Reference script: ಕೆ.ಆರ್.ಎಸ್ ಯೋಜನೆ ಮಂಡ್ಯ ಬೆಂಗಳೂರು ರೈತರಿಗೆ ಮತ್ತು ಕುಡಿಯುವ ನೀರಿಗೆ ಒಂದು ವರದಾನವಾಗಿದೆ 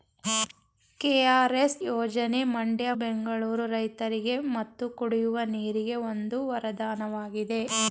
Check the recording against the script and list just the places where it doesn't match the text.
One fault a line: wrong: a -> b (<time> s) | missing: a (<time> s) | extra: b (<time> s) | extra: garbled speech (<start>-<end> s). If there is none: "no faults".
no faults